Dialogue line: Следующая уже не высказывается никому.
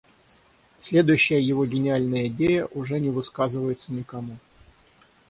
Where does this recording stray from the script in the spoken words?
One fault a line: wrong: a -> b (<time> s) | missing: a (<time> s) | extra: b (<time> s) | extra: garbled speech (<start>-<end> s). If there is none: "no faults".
extra: его гениальная идея (1.4 s)